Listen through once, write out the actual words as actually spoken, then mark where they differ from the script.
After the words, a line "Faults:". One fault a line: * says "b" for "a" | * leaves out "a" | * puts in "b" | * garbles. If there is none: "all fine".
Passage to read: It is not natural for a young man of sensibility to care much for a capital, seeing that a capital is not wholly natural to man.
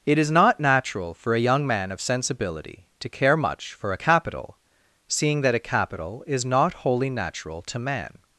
It is not natural for a young man of sensibility to care much for a capital, seeing that a capital is not wholly natural to man.
Faults:
all fine